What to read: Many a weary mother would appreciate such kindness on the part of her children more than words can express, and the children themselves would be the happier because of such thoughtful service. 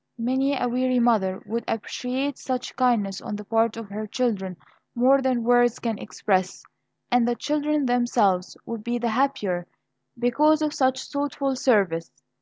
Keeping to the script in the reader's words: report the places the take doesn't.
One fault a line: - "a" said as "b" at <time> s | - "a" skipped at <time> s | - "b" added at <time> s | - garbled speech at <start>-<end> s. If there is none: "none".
none